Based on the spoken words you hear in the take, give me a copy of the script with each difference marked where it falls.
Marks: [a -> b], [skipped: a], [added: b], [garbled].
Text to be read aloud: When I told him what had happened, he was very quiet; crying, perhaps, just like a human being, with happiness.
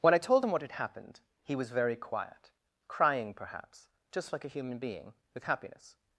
When I told him what had happened, he was very quiet; crying, perhaps, just like a human being, with happiness.